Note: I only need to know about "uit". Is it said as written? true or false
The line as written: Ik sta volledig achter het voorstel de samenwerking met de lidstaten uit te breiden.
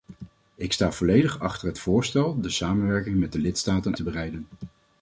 false